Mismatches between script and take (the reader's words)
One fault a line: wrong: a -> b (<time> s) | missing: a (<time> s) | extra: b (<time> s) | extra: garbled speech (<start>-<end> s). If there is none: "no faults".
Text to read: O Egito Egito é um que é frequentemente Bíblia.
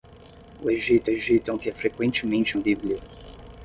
no faults